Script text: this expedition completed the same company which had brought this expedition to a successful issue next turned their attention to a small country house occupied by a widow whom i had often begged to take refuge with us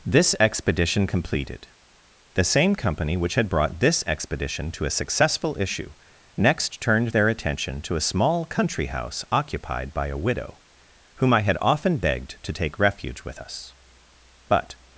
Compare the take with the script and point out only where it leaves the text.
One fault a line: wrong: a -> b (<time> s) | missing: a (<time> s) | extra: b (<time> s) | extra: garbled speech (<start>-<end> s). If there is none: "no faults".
extra: but (14.5 s)